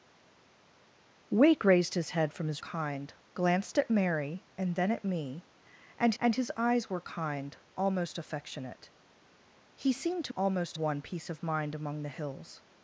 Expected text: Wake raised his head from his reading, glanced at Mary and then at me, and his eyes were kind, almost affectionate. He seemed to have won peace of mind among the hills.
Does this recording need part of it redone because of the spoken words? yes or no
yes